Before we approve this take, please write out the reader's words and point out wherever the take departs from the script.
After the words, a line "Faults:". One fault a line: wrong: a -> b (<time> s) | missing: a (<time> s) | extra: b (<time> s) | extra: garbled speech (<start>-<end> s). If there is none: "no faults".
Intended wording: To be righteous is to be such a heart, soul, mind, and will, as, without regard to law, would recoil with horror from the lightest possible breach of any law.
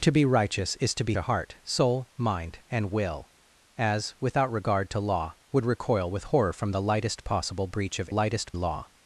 To be righteous is to be a heart, soul, mind, and will, as, without regard to law, would recoil with horror from the lightest possible breach of lightest law.
Faults:
missing: such (1.1 s)
wrong: any -> lightest (8.1 s)